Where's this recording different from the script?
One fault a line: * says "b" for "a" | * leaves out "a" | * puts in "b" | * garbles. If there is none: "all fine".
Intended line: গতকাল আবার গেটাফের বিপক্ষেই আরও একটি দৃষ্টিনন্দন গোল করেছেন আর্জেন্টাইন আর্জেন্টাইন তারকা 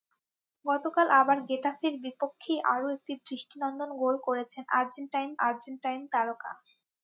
all fine